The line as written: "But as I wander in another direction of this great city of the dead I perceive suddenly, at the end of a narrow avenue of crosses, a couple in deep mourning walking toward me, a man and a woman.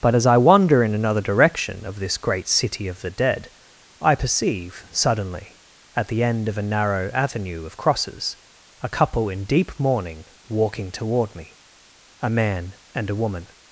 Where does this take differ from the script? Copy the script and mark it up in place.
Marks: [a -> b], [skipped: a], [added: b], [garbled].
"But as I wander in another direction of this great city of the dead I perceive suddenly, at the end of a narrow avenue of crosses, a couple in deep mourning walking toward me, a man and a woman.